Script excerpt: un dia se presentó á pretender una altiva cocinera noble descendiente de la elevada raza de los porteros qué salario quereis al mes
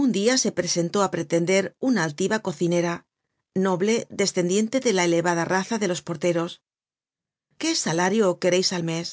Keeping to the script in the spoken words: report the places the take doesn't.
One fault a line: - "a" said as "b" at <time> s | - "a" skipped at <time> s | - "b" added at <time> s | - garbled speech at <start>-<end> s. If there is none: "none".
none